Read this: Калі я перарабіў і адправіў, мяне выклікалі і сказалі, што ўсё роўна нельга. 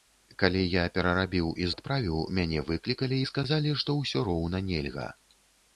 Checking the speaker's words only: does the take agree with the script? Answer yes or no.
yes